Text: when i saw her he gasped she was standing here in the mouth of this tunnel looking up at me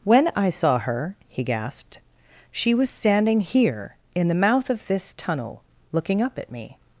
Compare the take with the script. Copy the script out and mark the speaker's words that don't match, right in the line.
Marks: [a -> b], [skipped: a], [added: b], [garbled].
when i saw her he gasped she was standing here in the mouth of this tunnel looking up at me